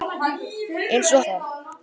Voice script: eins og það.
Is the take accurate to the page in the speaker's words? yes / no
yes